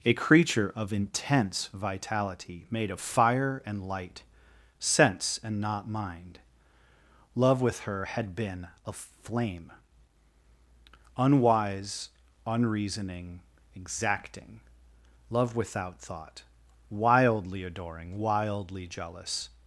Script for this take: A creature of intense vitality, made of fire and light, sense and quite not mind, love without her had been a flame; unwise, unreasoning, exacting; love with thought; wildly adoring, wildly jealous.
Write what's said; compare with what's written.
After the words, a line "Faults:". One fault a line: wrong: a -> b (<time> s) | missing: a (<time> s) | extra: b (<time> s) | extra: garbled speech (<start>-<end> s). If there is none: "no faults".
A creature of intense vitality, made of fire and light, sense and not mind, love with her had been a flame; unwise, unreasoning, exacting; love without thought; wildly adoring, wildly jealous.
Faults:
missing: quite (5.6 s)
wrong: without -> with (7.6 s)
wrong: with -> without (15.6 s)